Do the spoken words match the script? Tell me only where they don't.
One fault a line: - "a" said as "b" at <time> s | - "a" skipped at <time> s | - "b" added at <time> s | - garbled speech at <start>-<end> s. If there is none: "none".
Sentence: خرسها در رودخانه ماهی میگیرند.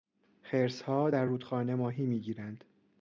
none